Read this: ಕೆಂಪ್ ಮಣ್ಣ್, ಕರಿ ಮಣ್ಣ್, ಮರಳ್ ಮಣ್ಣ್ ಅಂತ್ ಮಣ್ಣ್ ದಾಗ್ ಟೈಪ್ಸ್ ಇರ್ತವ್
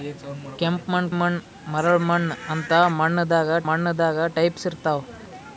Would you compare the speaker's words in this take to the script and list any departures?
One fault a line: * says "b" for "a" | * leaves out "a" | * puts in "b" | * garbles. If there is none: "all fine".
* leaves out "ಕರಿ"
* puts in "ಮಣ್ಣ್ ದಾಗ್"